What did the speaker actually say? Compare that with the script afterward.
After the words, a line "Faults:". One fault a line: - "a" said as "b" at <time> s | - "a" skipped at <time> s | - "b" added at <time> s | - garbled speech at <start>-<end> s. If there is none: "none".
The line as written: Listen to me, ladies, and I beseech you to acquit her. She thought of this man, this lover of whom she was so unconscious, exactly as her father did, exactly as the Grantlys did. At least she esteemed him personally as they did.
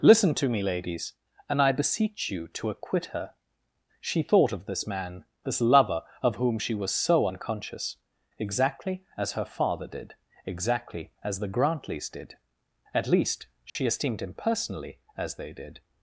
Listen to me, ladies, and I beseech you to acquit her. She thought of this man, this lover of whom she was so unconscious, exactly as her father did, exactly as the Grantlys did. At least she esteemed him personally as they did.
Faults:
none